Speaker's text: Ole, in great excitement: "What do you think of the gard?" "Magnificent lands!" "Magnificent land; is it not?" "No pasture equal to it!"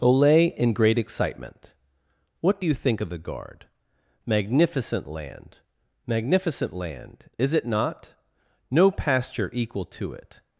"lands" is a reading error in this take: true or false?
true